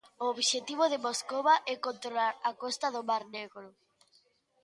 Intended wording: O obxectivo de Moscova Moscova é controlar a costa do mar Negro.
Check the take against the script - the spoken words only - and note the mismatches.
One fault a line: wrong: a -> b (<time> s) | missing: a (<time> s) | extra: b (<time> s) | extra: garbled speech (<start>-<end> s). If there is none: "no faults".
missing: Moscova (1.6 s)